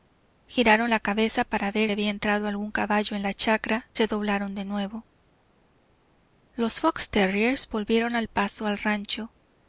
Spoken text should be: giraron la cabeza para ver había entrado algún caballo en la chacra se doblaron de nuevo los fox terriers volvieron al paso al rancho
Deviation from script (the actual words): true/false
false